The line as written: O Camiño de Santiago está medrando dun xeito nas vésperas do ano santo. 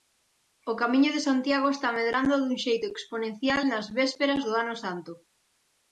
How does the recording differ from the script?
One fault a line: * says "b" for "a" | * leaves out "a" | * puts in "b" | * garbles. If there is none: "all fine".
* puts in "exponencial"